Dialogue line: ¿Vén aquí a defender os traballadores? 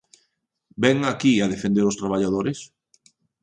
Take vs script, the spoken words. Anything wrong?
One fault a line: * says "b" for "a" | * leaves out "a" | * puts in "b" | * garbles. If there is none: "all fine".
all fine